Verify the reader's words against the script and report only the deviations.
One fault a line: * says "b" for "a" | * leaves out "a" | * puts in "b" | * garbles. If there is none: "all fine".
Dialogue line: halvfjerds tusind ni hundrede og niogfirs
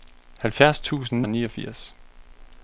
* leaves out "ni hundrede"